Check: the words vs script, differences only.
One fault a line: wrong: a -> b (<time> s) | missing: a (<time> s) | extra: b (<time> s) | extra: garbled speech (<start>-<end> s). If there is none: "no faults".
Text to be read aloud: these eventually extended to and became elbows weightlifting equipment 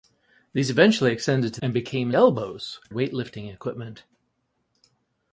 no faults